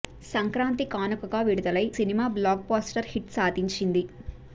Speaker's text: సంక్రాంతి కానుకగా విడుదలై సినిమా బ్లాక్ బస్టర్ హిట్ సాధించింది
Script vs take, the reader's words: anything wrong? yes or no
no